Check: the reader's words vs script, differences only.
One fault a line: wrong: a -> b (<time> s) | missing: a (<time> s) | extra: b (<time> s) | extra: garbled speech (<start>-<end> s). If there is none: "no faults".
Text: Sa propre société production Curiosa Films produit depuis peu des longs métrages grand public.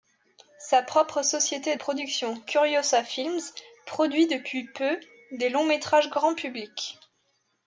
no faults